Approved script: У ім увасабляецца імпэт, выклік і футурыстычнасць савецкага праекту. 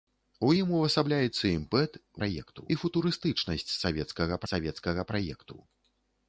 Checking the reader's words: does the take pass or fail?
fail